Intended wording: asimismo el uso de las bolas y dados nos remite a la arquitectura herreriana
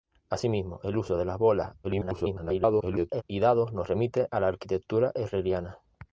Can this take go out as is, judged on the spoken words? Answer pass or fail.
fail